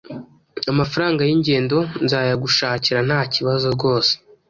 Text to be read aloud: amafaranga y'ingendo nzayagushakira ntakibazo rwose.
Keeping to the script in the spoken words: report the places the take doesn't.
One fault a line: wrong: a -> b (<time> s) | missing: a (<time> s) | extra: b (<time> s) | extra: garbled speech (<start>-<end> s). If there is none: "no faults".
no faults